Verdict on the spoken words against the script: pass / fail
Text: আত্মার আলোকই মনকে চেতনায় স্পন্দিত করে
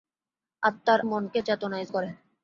fail